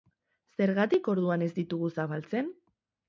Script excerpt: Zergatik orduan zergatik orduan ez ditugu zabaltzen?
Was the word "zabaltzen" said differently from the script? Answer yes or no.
no